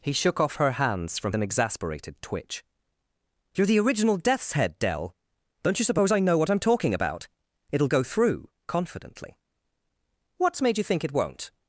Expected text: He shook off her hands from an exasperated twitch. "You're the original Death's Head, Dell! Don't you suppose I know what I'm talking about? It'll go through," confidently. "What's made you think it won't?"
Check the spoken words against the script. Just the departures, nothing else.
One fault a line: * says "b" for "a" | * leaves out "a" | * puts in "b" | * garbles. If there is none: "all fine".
all fine